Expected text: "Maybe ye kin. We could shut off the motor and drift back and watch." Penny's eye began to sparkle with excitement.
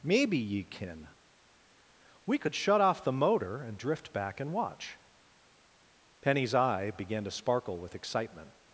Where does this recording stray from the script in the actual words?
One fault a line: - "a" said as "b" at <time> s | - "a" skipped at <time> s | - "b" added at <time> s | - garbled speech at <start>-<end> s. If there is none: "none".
none